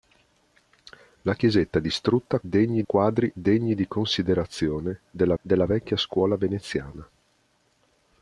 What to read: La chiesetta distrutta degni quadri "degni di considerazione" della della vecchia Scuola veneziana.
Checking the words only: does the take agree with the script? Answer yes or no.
yes